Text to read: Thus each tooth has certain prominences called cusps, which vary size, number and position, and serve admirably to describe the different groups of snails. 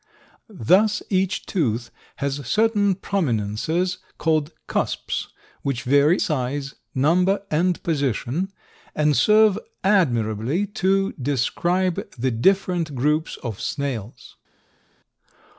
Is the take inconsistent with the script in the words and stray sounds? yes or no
no